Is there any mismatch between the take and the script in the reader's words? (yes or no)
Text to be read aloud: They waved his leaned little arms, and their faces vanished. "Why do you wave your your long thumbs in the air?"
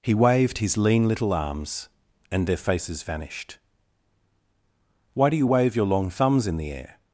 yes